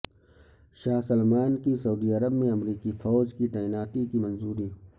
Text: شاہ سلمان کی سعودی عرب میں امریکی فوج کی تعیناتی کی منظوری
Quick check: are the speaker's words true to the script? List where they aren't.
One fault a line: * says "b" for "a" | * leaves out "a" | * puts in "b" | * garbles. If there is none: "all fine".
all fine